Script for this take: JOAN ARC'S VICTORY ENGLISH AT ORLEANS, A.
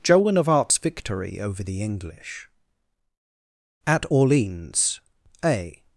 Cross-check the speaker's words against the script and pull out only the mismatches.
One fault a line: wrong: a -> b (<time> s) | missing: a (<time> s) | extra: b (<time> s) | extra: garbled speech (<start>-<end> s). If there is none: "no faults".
extra: OF (0.3 s)
extra: OVER THE (1.4 s)